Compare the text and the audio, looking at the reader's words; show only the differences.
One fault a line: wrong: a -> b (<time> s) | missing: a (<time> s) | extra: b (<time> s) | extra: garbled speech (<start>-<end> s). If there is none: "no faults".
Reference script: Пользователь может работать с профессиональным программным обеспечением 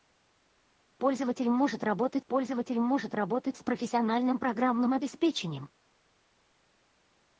extra: пользователь может работать (2.3 s)